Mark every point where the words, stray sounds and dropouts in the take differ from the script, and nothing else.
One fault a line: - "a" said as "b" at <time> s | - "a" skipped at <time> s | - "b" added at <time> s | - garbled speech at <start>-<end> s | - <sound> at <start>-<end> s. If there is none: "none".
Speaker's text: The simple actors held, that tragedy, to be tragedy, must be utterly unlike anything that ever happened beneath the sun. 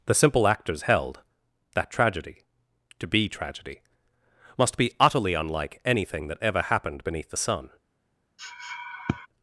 - sniff at 8.4-9.3 s